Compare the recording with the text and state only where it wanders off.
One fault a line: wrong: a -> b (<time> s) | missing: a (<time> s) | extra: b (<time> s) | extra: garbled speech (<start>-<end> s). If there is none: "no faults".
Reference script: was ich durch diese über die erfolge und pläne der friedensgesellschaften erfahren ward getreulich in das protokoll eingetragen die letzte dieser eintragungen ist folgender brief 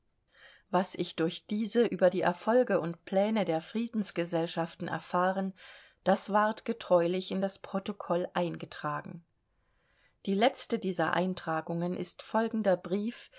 extra: das (6.0 s)